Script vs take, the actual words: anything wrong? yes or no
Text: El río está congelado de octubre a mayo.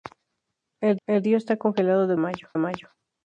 yes